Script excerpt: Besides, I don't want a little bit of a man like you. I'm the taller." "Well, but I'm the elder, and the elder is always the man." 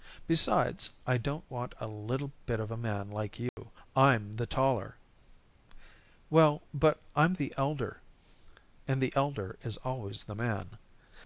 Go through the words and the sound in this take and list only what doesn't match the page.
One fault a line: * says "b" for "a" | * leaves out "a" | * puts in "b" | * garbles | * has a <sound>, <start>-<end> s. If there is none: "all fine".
* has a dropout, 3.5-3.6 s